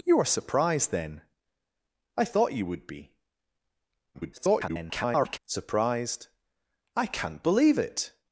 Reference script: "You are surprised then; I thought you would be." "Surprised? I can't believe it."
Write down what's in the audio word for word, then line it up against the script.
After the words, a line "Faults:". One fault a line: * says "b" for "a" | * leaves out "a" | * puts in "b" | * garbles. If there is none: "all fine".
"You are surprised then; I thought you would be." [garbled] "Surprised? I can't believe it."
Faults:
* garbles